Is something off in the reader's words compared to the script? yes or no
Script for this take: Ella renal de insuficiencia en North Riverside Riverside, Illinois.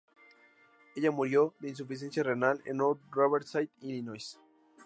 yes